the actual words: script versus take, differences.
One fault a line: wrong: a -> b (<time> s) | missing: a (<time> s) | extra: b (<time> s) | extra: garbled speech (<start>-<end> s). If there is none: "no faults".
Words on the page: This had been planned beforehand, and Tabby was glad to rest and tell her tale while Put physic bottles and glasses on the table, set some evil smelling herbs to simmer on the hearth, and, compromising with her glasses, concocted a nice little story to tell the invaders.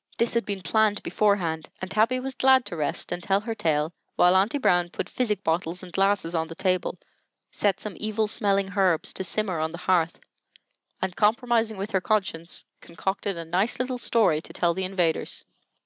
extra: Aunty Brown (4.3 s)
wrong: glasses -> conscience (12.0 s)